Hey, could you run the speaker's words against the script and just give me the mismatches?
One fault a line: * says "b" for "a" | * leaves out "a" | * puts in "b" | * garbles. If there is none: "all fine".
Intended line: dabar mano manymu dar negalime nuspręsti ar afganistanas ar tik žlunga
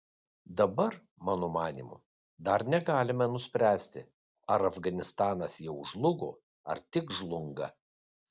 * puts in "jau žlugo"